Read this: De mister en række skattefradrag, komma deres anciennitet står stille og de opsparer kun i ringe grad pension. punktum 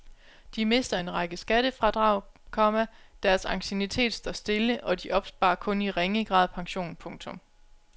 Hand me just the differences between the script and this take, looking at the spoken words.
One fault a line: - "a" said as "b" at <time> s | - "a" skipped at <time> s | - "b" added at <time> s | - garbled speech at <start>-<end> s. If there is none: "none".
none